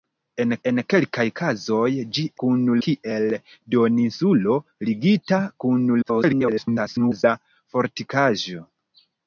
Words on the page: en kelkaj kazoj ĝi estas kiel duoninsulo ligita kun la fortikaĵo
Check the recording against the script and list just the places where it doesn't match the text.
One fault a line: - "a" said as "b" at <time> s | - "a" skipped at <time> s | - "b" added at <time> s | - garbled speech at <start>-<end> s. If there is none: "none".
- "en" added at 0.7 s
- "estas" said as "kun" at 2.4 s
- garbled speech at 6.0-7.2 s